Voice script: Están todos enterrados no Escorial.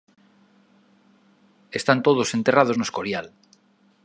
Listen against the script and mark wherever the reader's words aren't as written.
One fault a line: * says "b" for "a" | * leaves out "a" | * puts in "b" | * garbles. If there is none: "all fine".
all fine